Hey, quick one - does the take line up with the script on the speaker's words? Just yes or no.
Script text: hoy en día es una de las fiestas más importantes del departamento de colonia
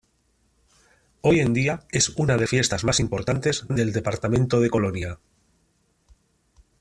no